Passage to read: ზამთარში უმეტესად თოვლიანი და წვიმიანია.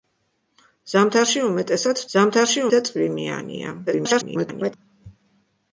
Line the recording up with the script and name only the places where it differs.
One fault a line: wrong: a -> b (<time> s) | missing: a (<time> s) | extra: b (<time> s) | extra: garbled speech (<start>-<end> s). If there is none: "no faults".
wrong: თოვლიანი -> ზამთარში (2.1 s)
extra: garbled speech (3.9-4.7 s)